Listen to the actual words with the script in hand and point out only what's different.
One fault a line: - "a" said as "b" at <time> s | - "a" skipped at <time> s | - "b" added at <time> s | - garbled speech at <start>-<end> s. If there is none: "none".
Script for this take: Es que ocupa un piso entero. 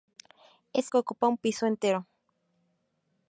none